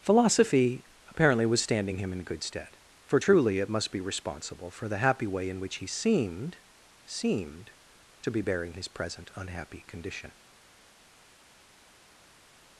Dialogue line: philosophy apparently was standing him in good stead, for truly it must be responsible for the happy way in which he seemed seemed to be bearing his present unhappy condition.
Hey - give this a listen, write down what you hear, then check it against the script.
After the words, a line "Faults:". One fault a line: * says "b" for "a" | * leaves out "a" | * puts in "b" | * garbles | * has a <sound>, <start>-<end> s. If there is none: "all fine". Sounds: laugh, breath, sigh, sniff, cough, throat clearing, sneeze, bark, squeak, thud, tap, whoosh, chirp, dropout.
philosophy apparently was standing him in good stead, for truly it must be responsible for the happy way in which he seemed seemed to be bearing his present unhappy condition.
Faults:
all fine